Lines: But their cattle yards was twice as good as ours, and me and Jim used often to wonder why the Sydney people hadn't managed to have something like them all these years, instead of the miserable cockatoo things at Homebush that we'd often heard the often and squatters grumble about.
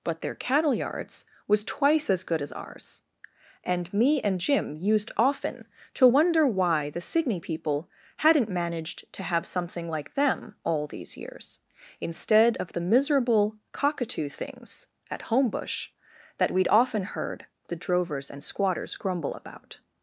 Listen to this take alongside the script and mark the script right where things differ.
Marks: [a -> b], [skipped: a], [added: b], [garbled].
But their cattle yards was twice as good as ours, and me and Jim used often to wonder why the Sydney people hadn't managed to have something like them all these years, instead of the miserable cockatoo things at Homebush that we'd often heard the [often -> drovers] and squatters grumble about.